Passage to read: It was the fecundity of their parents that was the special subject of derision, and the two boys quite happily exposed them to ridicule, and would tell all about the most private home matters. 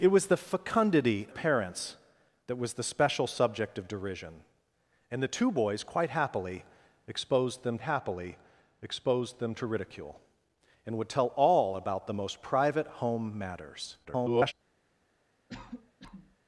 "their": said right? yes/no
no